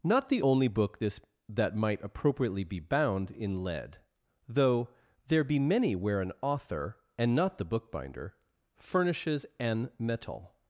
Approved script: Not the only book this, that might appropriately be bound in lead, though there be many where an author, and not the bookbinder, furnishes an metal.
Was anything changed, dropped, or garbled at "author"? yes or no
no